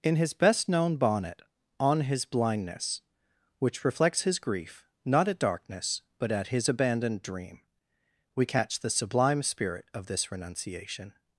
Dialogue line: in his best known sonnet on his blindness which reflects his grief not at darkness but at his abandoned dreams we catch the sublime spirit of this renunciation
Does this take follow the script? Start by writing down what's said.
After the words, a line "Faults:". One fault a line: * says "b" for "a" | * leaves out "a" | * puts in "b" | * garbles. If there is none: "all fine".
in his best known bonnet on his blindness which reflects his grief not at darkness but at his abandoned dream we catch the sublime spirit of this renunciation
Faults:
* says "bonnet" for "sonnet"
* says "dream" for "dreams"